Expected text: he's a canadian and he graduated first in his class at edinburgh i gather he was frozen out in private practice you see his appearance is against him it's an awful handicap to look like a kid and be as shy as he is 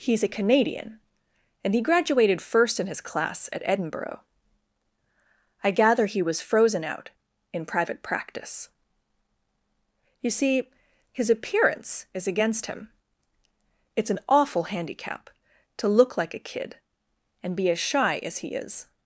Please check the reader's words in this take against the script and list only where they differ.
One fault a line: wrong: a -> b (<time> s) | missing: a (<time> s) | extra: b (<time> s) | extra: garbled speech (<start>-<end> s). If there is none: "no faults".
no faults